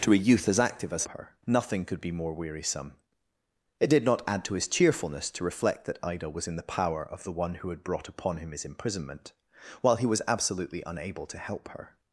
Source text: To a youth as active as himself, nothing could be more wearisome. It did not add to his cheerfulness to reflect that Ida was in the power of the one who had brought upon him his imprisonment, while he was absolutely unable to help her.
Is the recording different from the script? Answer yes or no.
yes